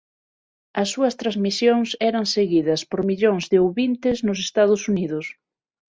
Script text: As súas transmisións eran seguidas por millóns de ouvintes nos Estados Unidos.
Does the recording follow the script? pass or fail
pass